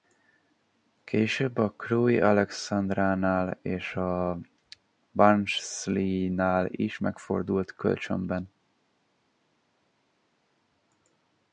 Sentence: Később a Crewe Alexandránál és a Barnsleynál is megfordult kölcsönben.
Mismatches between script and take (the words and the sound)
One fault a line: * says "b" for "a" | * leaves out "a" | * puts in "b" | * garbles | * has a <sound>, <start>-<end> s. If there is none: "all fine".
all fine